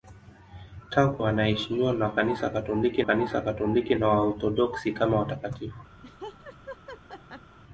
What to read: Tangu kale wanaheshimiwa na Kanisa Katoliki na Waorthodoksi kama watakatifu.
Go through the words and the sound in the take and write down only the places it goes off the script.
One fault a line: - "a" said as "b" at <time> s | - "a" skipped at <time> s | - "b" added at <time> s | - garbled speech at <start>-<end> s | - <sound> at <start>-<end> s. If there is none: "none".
- "kale" skipped at 1.2 s
- "Kanisa Katoliki" added at 3.0 s
- laugh at 6.0-7.6 s